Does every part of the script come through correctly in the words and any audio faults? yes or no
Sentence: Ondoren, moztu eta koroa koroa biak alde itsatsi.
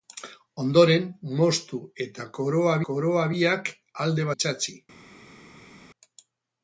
yes